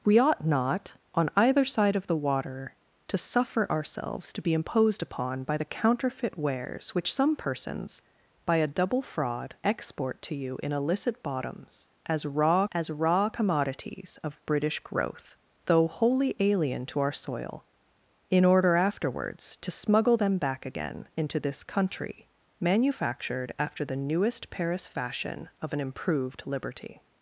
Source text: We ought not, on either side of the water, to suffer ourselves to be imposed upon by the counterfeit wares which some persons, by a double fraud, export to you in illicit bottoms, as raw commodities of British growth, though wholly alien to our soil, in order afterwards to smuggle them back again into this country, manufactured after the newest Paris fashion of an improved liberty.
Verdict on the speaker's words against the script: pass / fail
fail